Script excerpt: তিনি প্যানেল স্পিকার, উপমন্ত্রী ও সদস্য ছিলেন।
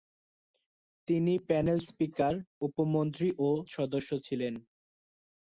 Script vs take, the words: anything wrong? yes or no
no